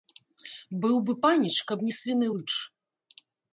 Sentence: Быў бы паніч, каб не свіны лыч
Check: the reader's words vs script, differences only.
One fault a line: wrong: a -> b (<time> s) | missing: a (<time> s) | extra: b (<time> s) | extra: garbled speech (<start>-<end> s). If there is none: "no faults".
no faults